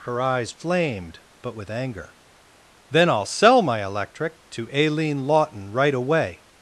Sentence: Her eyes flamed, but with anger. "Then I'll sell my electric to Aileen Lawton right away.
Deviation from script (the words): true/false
false